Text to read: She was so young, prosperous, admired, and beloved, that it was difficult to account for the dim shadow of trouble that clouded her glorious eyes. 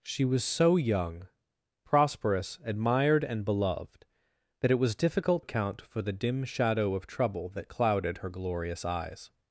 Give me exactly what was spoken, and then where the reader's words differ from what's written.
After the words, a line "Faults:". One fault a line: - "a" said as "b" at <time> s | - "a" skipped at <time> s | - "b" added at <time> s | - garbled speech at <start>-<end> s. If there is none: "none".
She was so young, prosperous, admired, and beloved, that it was difficult account for the dim shadow of trouble that clouded her glorious eyes.
Faults:
- "to" skipped at 5.4 s